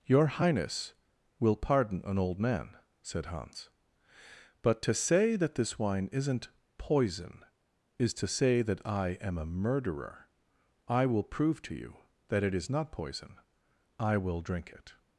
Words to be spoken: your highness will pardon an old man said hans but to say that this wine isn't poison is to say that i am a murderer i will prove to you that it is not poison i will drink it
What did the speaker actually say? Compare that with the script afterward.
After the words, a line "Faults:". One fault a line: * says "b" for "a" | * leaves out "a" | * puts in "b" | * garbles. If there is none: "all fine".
your highness will pardon an old man said hans but to say that this wine isn't poison is to say that i am a murderer i will prove to you that it is not poison i will drink it
Faults:
all fine